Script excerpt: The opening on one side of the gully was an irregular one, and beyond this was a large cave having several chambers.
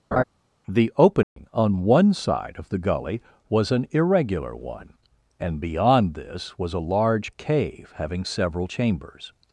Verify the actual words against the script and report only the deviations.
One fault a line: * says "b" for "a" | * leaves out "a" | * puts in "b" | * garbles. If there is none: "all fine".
all fine